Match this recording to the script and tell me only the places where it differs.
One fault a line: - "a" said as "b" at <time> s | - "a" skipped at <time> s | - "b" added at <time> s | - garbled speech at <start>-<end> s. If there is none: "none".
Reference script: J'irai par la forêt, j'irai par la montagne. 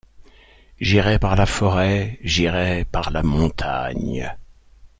none